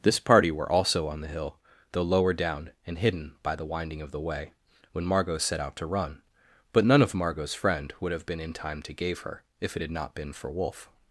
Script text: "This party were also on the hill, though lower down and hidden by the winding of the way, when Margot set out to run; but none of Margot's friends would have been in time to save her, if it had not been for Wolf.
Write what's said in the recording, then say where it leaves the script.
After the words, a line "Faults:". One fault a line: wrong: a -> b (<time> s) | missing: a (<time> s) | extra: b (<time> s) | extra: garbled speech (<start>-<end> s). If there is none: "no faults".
"This party were also on the hill, though lower down and hidden by the winding of the way, when Margot set out to run; but none of Margot's friend would have been in time to gave her, if it had not been for Wolf.
Faults:
wrong: friends -> friend (7.5 s)
wrong: save -> gave (8.9 s)